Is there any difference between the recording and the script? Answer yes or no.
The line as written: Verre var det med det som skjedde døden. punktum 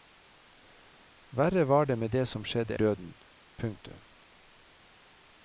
no